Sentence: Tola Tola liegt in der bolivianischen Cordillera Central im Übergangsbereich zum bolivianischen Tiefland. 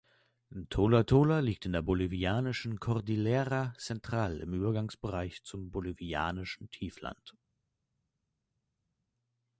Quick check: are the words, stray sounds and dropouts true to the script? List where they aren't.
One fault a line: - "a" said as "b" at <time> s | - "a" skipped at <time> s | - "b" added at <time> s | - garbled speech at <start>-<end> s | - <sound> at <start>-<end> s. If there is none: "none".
none